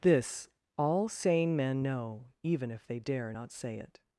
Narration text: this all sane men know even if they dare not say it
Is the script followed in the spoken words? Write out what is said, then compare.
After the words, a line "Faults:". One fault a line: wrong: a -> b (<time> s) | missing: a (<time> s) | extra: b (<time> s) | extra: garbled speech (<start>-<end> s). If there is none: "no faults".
this all sane men know even if they dare not say it
Faults:
no faults